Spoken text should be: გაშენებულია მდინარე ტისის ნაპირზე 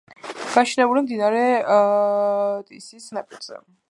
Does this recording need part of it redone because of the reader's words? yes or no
no